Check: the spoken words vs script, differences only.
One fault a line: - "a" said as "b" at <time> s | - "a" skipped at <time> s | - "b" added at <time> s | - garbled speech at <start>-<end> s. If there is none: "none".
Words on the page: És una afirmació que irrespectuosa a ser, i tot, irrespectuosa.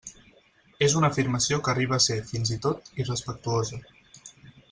- "irrespectuosa" said as "arriba" at 1.8 s
- "fins" added at 2.3 s